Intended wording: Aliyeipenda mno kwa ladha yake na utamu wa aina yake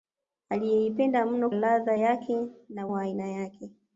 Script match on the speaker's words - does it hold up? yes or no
no